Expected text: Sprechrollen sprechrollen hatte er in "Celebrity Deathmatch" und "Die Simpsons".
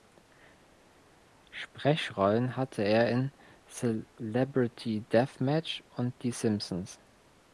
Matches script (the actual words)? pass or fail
fail